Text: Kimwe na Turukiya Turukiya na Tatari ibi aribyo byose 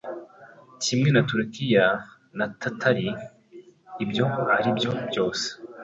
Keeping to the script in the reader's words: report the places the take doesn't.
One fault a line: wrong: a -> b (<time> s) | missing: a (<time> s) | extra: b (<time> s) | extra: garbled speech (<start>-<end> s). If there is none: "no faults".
missing: Turukiya (1.8 s)
wrong: ibi -> ibyo (4.0 s)